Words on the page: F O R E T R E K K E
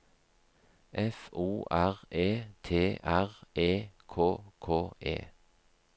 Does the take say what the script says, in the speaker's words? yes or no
yes